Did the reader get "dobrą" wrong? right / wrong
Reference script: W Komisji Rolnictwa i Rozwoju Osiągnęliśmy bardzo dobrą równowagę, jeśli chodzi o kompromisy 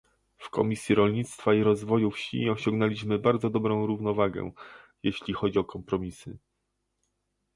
right